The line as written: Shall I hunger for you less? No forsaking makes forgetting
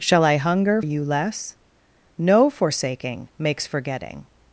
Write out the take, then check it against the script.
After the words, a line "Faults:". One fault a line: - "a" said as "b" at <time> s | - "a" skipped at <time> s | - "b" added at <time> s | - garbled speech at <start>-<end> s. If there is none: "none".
Shall I hunger you less? No forsaking makes forgetting
Faults:
- "for" skipped at 0.8 s